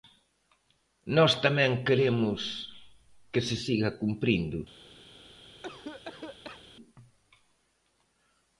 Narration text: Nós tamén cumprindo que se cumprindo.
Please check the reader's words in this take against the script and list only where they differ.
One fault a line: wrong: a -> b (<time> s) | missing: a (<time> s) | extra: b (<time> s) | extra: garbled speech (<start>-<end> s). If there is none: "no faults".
wrong: cumprindo -> queremos (1.9 s)
extra: siga (3.6 s)